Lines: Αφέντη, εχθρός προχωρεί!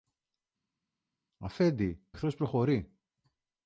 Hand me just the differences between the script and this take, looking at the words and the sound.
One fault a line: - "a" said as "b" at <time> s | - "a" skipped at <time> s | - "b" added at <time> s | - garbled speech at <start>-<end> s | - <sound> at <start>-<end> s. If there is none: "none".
none